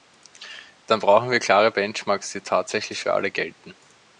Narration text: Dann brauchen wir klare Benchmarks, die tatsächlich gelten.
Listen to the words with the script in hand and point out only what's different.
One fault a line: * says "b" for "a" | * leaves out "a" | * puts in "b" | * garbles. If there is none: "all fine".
* puts in "für alle"